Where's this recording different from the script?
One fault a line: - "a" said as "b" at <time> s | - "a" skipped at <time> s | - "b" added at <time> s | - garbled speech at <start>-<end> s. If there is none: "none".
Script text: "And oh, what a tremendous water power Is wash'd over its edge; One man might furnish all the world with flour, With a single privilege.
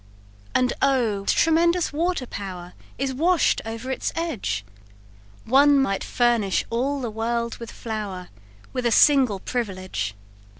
- "what" skipped at 1.2 s
- "man" skipped at 5.8 s